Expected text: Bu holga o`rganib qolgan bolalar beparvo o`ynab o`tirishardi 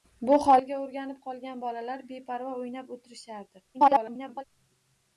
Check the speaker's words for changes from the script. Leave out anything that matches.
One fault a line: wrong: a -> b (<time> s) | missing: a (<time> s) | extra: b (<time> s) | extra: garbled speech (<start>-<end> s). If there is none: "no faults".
extra: garbled speech (3.7-4.4 s)